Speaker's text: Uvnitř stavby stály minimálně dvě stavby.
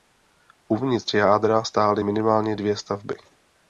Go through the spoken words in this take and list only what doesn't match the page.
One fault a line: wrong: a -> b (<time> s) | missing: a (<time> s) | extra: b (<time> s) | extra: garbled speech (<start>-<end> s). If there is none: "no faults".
wrong: stavby -> jádra (1.1 s)